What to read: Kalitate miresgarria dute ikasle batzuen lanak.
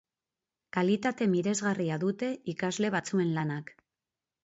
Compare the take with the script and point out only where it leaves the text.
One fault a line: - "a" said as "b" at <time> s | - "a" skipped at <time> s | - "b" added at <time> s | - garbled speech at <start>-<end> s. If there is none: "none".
none